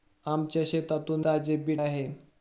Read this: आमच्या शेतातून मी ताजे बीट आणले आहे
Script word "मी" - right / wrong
wrong